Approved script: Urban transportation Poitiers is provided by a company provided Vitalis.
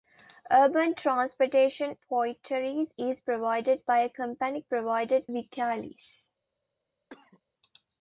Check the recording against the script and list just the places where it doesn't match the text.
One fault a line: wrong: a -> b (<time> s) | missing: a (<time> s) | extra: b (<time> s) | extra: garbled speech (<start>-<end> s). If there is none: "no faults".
no faults